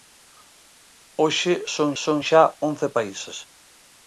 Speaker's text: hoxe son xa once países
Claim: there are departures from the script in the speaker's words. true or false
true